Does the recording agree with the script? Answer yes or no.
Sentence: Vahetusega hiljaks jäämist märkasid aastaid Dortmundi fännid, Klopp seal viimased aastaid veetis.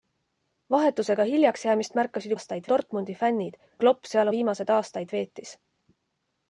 yes